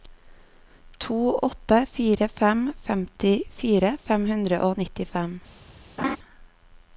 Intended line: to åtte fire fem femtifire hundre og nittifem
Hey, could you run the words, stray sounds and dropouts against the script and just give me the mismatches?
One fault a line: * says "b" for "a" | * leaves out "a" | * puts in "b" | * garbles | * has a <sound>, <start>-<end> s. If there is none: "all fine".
* puts in "fem"
* has a laugh, 6.0-6.2 s